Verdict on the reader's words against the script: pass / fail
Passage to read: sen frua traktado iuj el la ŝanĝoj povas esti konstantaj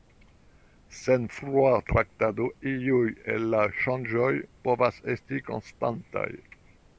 pass